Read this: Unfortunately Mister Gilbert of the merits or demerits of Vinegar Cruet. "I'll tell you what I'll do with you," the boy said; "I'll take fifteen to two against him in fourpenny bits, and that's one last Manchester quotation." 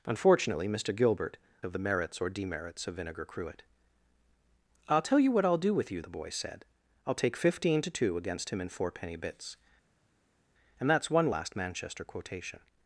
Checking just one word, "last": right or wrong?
right